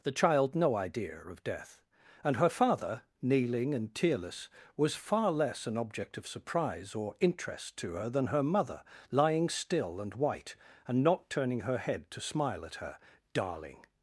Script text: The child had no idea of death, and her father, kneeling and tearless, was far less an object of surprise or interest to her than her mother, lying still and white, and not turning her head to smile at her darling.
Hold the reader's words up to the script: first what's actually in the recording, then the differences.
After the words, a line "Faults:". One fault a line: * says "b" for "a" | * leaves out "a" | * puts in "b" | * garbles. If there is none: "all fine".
The child no idea of death, and her father, kneeling and tearless, was far less an object of surprise or interest to her than her mother, lying still and white, and not turning her head to smile at her darling.
Faults:
* leaves out "had"